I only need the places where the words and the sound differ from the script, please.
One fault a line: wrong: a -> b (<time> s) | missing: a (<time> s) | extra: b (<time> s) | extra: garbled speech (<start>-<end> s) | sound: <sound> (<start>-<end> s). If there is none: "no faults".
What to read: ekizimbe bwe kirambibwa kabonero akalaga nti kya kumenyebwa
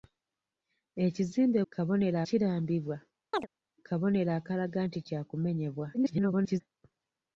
wrong: bwe -> kabonero (1.7 s)
sound: chirp (3.3-3.5 s)
extra: garbled speech (5.9-6.6 s)